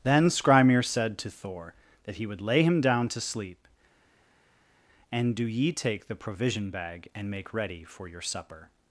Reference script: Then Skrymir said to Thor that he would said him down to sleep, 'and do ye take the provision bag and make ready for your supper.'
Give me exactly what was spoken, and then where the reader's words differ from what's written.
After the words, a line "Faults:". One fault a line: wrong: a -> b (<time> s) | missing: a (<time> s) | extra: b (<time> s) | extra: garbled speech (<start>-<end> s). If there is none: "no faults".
Then Skrymir said to Thor that he would lay him down to sleep, 'and do ye take the provision bag and make ready for your supper.'
Faults:
wrong: said -> lay (2.4 s)